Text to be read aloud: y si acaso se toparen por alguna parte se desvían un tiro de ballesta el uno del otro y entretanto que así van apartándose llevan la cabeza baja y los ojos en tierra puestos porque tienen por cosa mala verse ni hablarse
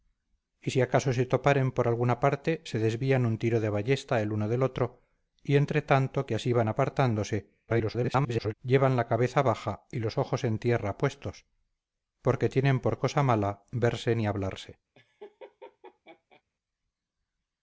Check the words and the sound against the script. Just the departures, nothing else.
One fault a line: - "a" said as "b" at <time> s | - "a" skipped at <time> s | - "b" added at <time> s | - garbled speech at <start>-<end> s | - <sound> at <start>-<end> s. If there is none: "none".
- garbled speech at 7.7-8.5 s
- laugh at 14.9-16.4 s